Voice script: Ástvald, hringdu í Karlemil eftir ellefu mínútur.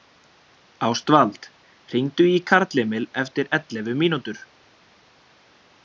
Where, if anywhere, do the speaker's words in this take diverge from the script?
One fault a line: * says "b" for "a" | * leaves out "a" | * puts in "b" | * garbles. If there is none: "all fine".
all fine